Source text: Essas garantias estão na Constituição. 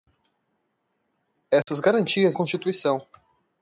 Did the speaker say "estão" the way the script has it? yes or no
no